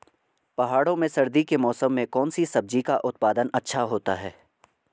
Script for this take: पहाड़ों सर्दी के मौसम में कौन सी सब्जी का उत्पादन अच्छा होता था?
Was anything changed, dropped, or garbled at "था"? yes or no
yes